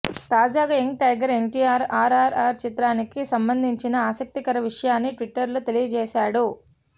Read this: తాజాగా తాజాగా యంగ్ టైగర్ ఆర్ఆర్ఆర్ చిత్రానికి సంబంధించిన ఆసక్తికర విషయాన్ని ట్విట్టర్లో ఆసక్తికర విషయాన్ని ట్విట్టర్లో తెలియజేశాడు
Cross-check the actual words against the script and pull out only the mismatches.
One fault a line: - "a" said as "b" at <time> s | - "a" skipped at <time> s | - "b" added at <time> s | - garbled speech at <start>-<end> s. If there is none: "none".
- "తాజాగా" skipped at 0.8 s
- "ఎన్టీఆర్" added at 1.3 s
- "ఆసక్తికర విషయాన్ని ట్విట్టర్లో" skipped at 5.6 s